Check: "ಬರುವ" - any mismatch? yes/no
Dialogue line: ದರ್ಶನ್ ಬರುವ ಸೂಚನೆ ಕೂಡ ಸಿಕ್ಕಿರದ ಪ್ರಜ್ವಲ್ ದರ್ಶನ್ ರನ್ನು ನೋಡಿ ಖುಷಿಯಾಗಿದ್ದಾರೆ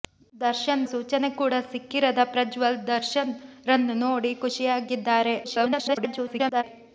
yes